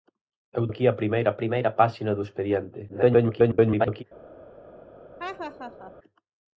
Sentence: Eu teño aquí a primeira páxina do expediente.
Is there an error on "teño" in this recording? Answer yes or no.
yes